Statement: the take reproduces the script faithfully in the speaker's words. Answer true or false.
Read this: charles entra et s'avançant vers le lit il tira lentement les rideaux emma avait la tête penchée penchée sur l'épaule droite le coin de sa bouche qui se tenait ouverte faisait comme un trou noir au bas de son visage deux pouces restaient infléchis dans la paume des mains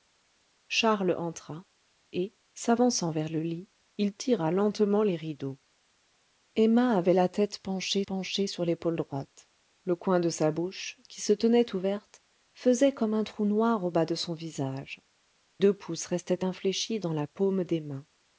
true